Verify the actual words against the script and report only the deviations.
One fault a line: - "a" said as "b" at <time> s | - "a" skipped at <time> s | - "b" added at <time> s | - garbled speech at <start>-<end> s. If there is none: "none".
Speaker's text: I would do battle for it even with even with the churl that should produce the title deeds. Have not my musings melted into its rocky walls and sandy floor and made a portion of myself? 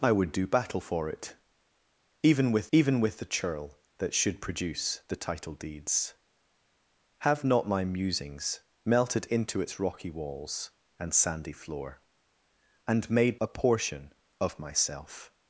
none